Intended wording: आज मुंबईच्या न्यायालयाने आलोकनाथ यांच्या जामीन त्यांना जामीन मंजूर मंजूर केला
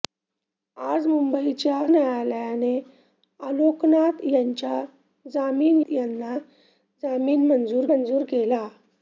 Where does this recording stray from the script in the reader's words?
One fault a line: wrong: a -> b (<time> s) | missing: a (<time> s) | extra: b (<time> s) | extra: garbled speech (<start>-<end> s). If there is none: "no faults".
no faults